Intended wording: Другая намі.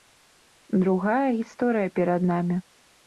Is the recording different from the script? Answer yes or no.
yes